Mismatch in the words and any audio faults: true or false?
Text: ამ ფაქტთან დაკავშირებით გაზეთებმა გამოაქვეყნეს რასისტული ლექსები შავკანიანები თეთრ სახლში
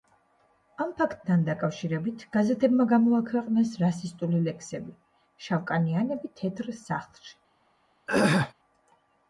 true